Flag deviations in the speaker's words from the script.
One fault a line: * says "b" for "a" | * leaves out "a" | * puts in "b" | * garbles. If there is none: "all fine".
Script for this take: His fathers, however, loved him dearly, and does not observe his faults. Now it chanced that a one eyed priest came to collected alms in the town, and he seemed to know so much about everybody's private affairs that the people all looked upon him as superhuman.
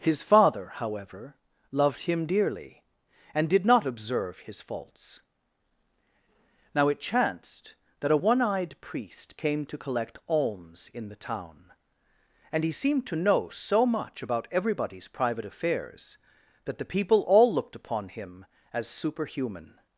* says "father" for "fathers"
* says "did" for "does"
* says "collect" for "collected"